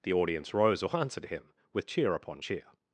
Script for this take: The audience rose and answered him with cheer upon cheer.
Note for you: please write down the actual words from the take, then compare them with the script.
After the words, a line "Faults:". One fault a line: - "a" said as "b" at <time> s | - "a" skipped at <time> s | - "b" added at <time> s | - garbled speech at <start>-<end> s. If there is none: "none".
The audience rose or answered him with cheer upon cheer.
Faults:
- "and" said as "or" at 0.8 s